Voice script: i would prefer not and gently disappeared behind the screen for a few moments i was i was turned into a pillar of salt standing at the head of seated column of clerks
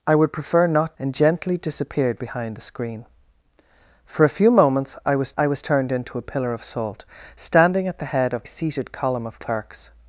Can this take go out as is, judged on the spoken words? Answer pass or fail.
pass